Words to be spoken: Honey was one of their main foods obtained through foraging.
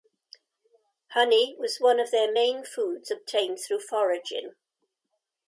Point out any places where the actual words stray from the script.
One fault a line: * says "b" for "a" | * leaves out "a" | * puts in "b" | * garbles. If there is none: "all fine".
all fine